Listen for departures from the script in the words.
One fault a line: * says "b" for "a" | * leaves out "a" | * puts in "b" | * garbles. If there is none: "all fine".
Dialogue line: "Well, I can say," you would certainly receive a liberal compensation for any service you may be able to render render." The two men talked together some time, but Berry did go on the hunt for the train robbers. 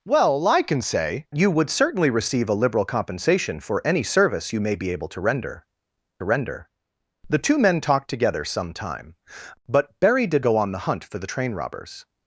all fine